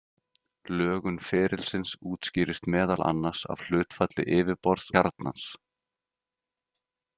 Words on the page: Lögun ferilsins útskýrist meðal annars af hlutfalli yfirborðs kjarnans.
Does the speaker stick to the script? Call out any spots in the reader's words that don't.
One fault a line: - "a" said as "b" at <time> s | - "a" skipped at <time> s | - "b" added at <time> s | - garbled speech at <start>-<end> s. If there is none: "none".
none